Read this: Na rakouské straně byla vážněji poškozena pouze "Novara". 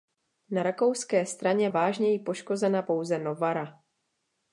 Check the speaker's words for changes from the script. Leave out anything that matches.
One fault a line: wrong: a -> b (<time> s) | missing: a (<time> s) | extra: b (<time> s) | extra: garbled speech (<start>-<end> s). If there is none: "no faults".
missing: byla (1.7 s)